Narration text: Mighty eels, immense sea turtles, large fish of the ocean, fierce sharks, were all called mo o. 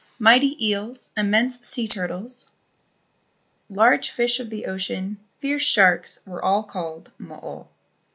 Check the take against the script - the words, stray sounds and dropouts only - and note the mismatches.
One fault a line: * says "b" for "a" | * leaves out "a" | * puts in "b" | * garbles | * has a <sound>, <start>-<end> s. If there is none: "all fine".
all fine